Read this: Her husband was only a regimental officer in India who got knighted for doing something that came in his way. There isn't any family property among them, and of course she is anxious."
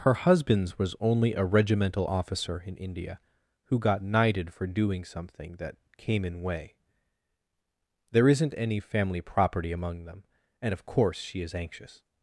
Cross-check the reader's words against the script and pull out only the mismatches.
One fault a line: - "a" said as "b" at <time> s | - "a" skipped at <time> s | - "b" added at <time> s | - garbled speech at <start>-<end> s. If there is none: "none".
- "husband" said as "husbands" at 0.1 s
- "his" skipped at 6.4 s